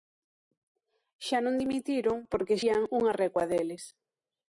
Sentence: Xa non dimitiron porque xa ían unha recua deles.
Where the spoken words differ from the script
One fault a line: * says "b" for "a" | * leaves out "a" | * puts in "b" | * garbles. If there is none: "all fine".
* leaves out "xa"